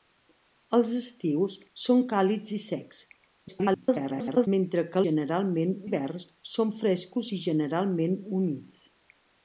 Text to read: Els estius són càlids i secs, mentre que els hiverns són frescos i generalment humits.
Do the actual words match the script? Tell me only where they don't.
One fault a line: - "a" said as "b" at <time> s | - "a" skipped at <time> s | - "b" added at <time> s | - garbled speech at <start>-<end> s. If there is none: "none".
- garbled speech at 3.5-4.5 s
- "els" said as "generalment" at 5.0 s